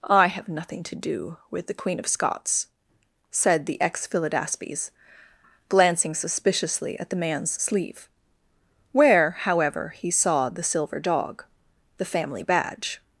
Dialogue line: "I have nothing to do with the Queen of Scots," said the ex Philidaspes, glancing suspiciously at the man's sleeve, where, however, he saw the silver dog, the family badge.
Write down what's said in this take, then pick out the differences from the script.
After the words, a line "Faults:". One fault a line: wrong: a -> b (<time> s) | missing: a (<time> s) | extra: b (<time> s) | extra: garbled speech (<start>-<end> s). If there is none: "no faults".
"I have nothing to do with the Queen of Scots," said the ex Philidaspes, glancing suspiciously at the man's sleeve, where, however, he saw the silver dog, the family badge.
Faults:
no faults